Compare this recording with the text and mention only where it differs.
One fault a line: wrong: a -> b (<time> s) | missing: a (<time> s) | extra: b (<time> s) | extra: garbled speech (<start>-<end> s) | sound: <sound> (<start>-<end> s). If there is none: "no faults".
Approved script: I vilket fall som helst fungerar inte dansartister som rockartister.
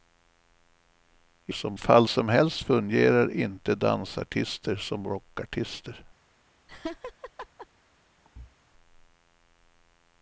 wrong: vilket -> som (1.5 s)
sound: laugh (6.7-7.7 s)
sound: thud (8.2-8.6 s)